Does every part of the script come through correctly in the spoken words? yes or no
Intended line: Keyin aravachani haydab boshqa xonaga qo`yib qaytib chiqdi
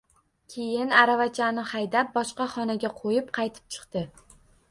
yes